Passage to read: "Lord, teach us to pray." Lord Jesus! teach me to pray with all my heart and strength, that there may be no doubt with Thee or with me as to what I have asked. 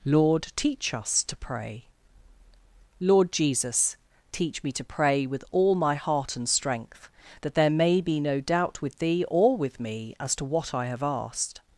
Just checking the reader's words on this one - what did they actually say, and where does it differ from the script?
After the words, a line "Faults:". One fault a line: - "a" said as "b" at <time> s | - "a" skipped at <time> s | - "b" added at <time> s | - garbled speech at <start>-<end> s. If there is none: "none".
"Lord, teach us to pray." Lord Jesus! teach me to pray with all my heart and strength, that there may be no doubt with Thee or with me as to what I have asked.
Faults:
none